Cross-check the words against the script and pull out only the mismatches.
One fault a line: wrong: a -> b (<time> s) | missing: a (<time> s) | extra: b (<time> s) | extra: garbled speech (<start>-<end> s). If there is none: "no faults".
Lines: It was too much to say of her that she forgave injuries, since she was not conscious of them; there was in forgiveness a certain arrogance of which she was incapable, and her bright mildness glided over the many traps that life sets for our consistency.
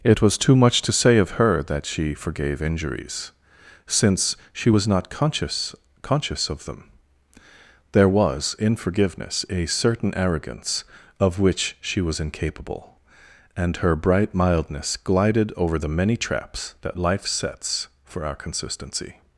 extra: conscious (6.0 s)